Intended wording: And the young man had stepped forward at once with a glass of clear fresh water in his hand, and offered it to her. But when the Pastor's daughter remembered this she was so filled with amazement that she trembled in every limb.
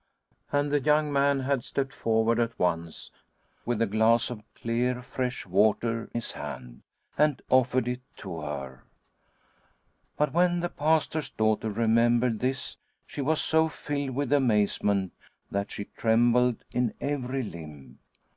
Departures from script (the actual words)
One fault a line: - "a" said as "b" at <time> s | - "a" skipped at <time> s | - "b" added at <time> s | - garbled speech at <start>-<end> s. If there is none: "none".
- "in" skipped at 6.1 s